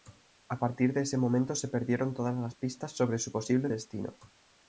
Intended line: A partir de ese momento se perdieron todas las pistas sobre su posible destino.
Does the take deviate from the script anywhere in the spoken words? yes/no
no